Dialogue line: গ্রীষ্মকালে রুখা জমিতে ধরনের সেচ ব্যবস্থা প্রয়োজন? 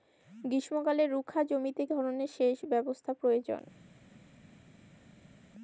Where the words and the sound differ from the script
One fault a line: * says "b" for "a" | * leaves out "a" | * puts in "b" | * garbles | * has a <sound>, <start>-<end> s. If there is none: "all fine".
all fine